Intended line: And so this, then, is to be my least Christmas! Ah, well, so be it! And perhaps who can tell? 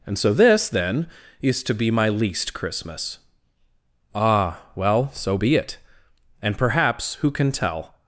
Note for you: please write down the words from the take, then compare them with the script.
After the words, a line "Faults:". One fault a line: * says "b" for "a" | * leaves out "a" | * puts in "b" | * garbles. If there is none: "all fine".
And so this, then, is to be my least Christmas! Ah, well, so be it! And perhaps who can tell?
Faults:
all fine